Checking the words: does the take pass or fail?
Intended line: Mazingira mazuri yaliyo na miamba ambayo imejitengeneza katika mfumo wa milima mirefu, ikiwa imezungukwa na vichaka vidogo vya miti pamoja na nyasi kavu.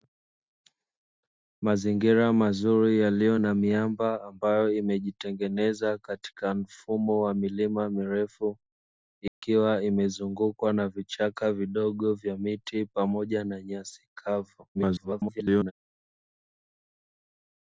fail